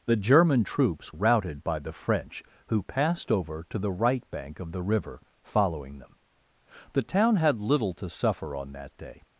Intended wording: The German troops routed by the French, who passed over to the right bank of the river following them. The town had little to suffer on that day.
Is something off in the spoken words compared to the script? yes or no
no